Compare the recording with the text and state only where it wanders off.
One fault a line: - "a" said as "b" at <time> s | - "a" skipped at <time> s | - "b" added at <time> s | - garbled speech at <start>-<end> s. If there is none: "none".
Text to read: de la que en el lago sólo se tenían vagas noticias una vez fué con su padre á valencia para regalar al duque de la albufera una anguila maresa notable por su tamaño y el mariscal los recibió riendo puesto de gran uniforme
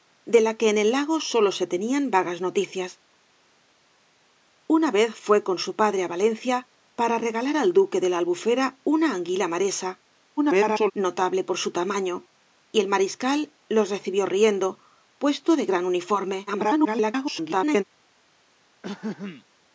- garbled speech at 10.4-10.9 s
- garbled speech at 16.5-17.8 s